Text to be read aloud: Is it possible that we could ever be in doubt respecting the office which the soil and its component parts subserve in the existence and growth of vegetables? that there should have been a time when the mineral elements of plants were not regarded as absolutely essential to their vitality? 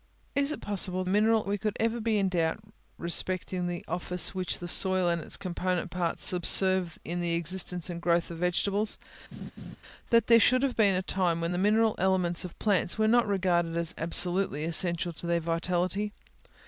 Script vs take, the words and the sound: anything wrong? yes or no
yes